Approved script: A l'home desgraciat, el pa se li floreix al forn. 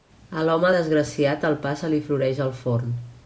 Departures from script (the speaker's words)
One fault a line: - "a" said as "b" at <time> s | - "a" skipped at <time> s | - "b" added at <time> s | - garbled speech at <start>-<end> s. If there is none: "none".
none